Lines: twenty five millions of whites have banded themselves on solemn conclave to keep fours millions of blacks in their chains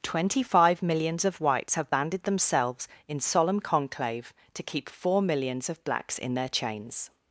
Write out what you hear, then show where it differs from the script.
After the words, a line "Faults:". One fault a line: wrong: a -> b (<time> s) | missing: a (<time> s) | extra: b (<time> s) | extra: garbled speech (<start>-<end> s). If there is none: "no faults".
twenty five millions of whites have banded themselves in solemn conclave to keep four millions of blacks in their chains
Faults:
wrong: on -> in (3.1 s)
wrong: fours -> four (4.9 s)